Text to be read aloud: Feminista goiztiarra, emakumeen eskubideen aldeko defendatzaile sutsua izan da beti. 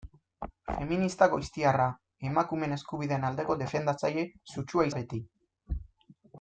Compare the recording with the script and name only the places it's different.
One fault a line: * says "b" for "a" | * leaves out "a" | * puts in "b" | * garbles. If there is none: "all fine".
* leaves out "izan"